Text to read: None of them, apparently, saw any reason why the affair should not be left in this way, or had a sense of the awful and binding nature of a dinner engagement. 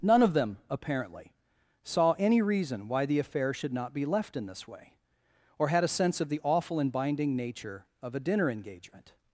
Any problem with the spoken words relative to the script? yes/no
no